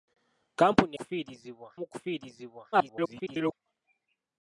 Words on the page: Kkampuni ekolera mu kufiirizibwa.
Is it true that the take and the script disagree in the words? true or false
true